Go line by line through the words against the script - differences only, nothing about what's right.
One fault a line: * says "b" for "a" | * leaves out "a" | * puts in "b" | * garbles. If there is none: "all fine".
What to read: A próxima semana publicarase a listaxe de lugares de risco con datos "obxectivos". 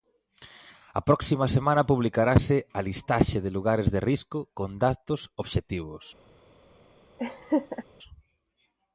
all fine